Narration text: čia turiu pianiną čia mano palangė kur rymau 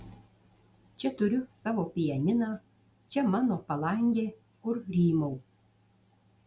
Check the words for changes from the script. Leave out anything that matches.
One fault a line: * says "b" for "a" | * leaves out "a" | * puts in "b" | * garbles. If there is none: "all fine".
* puts in "savo"